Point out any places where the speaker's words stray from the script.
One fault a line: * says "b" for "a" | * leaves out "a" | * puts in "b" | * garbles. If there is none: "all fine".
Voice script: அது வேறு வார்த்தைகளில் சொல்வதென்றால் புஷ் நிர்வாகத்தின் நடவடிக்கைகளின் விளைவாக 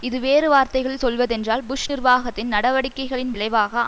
* says "இது" for "அது"